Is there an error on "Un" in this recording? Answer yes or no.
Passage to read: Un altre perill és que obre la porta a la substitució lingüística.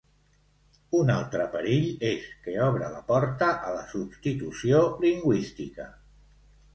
no